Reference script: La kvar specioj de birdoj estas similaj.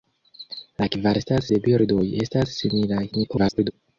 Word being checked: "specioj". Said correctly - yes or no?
no